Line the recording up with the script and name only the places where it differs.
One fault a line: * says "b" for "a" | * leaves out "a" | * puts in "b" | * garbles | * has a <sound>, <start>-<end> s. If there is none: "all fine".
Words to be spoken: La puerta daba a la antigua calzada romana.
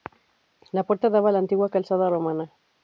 all fine